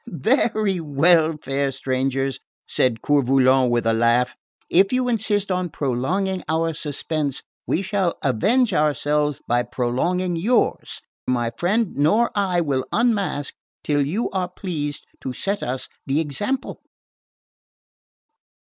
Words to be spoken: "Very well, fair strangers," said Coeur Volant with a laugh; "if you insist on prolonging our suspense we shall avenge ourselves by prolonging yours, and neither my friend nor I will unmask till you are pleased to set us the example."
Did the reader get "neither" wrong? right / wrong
wrong